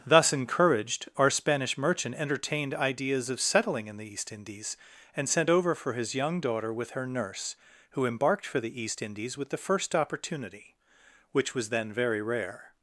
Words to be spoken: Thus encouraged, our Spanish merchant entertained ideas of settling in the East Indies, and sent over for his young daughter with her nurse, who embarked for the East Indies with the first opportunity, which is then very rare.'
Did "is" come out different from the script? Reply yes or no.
yes